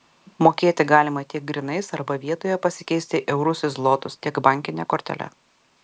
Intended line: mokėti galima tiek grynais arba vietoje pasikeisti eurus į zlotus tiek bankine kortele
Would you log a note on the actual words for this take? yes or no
no